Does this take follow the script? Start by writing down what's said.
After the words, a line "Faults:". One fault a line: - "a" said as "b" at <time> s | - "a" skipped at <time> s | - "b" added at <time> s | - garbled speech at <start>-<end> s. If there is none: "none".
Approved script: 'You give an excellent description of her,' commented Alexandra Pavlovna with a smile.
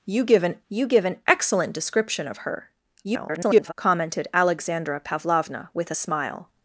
'You give an you give an excellent description of her,' [garbled] commented Alexandra Pavlovna with a smile.
Faults:
- "you give an" added at 0.7 s
- garbled speech at 3.0-3.7 s